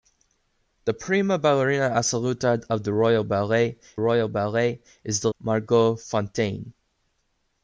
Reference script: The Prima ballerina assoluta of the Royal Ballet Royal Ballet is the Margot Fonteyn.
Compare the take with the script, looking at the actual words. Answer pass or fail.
pass